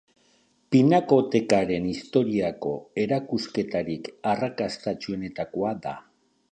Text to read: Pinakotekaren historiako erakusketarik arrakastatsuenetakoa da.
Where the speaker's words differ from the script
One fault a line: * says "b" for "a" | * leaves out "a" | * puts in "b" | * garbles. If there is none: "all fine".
all fine